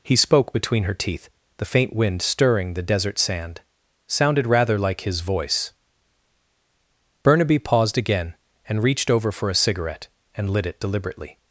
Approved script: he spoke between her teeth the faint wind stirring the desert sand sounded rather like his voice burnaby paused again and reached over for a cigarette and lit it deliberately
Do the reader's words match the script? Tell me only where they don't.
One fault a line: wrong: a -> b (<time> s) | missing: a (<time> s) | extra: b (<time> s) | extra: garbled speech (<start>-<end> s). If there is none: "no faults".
no faults